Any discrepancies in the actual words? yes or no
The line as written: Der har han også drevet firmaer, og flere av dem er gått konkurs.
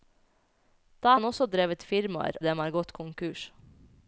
yes